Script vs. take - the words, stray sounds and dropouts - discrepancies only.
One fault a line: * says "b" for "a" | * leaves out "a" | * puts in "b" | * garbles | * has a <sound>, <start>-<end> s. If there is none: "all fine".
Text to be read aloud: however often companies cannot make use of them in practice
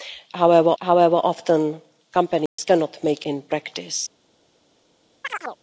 * puts in "however"
* has a dropout, 2.5-2.6 s
* leaves out "use of them"
* has a chirp, 5.2-5.6 s